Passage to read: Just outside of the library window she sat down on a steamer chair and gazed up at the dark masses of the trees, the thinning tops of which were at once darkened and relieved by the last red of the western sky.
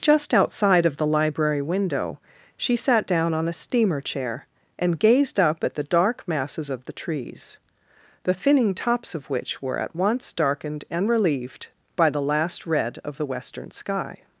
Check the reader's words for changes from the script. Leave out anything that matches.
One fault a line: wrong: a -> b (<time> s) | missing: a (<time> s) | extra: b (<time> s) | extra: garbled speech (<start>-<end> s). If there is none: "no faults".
no faults